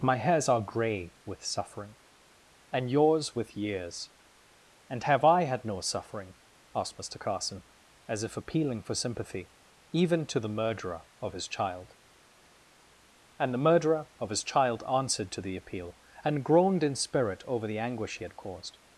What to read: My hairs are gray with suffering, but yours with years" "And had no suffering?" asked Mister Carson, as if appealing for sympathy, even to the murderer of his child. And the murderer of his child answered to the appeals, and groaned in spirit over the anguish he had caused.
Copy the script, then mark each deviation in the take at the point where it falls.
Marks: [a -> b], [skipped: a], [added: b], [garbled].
My hairs are gray with suffering, [but -> and] yours with years" "And [added: have I] had no suffering?" asked Mister Carson, as if appealing for sympathy, even to the murderer of his child. And the murderer of his child answered to the [appeals, -> appeal] and groaned in spirit over the anguish he had caused.